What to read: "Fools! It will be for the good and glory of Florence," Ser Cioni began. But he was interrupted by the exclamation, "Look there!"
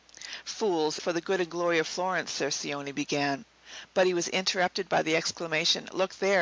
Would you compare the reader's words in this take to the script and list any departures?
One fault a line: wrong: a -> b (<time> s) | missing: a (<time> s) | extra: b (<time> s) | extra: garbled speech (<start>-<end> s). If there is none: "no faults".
missing: It will be (1.0 s)